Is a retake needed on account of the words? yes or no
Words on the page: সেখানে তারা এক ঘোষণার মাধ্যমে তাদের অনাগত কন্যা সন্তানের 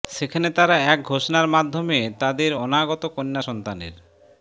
no